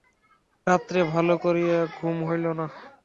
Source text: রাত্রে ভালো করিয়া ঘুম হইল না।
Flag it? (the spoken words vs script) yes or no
no